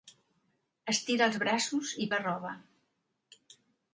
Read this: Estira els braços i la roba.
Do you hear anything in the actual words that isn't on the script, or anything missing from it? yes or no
no